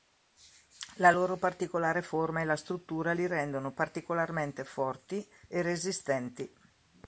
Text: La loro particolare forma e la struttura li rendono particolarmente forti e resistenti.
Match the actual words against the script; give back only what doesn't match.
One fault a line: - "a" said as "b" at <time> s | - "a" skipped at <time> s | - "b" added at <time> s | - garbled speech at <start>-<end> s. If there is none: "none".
none